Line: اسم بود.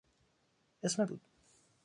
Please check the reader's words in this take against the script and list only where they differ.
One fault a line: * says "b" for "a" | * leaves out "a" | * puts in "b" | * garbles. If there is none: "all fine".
all fine